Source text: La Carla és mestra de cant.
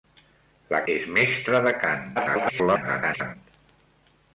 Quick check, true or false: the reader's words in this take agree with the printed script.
false